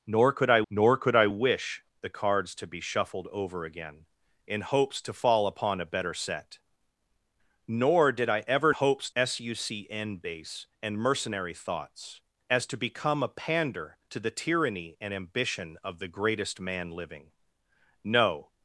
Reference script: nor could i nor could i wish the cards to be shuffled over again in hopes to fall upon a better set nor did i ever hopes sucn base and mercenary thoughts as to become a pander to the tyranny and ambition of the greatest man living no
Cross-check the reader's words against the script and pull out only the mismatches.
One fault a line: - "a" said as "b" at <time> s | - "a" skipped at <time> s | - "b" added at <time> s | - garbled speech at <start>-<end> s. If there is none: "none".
none